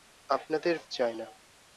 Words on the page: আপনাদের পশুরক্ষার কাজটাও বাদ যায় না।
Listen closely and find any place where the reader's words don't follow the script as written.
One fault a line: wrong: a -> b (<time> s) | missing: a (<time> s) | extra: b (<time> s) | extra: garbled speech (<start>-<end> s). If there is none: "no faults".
missing: পশুরক্ষার কাজটাও বাদ (0.8 s)